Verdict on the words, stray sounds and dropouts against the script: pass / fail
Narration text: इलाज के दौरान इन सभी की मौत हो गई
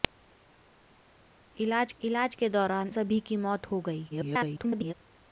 fail